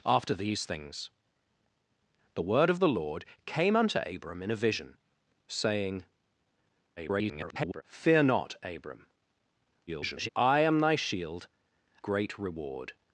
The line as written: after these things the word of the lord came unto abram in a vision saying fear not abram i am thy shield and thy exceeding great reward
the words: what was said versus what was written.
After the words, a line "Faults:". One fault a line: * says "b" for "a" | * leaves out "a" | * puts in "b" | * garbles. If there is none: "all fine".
after these things the word of the lord came unto abram in a vision saying [garbled] fear not abram [garbled] i am thy shield great reward
Faults:
* garbles
* garbles
* leaves out "and thy exceeding"